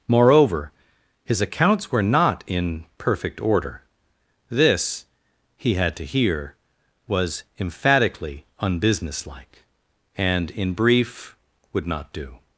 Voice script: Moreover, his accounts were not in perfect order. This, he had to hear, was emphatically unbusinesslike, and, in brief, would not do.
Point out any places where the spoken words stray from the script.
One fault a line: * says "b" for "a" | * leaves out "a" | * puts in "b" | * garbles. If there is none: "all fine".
all fine